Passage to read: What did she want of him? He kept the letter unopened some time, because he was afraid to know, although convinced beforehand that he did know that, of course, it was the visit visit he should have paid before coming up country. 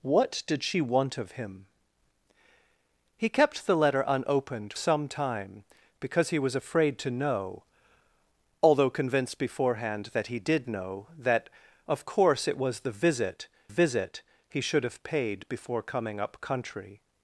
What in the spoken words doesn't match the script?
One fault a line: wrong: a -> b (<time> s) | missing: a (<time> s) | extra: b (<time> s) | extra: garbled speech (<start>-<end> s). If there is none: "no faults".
no faults